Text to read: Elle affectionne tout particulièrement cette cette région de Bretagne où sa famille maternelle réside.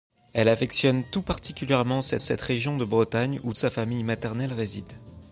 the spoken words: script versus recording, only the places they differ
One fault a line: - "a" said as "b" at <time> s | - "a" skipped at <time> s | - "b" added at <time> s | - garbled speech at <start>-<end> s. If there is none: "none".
none